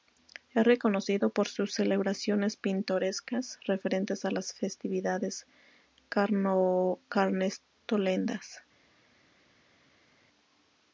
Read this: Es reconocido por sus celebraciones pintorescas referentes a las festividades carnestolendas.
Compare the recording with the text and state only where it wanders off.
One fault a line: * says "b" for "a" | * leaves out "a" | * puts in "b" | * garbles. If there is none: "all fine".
all fine